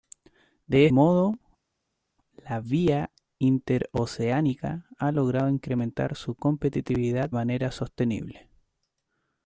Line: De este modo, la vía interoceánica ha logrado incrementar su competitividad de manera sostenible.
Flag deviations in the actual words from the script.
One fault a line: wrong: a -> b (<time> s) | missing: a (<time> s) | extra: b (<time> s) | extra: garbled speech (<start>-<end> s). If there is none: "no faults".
missing: este (0.9 s)
missing: de (7.3 s)